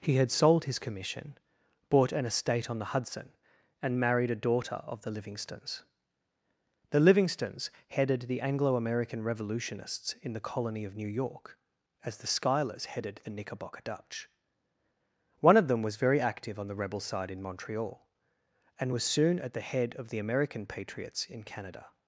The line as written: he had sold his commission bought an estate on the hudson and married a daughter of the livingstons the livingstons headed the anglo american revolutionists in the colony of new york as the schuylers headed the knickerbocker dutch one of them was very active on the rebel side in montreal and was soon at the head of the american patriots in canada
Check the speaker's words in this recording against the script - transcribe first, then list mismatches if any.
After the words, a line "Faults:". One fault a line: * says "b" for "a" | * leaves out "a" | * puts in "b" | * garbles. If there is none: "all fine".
he had sold his commission bought an estate on the hudson and married a daughter of the livingstons the livingstons headed the anglo american revolutionists in the colony of new york as the schuylers headed the knickerbocker dutch one of them was very active on the rebel side in montreal and was soon at the head of the american patriots in canada
Faults:
all fine